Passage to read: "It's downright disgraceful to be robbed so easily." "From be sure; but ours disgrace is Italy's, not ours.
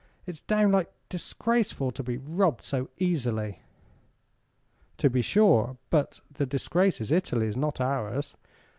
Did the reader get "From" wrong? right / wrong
wrong